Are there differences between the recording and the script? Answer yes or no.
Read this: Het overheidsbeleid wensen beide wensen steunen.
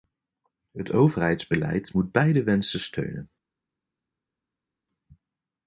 yes